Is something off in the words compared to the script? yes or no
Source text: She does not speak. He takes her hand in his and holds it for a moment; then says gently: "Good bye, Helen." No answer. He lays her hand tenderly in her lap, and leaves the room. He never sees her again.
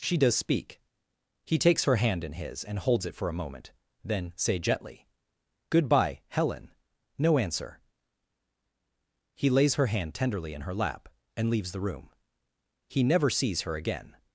yes